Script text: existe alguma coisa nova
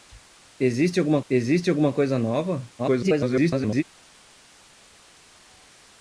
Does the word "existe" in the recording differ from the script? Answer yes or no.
no